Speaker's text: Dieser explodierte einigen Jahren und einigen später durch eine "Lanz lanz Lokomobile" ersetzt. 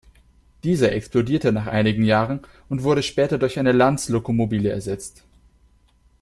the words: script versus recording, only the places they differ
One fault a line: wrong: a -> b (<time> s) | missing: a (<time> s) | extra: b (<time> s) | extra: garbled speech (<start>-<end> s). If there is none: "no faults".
extra: nach (1.5 s)
wrong: einigen -> wurde (2.8 s)
missing: lanz (4.1 s)